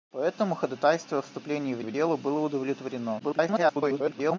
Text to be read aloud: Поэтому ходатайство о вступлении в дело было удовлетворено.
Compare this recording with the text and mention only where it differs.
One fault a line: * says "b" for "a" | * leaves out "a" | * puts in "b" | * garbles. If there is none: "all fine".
* puts in "в"
* garbles